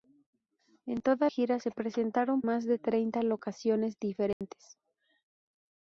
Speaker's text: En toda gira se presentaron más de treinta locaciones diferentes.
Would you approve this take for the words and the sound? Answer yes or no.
no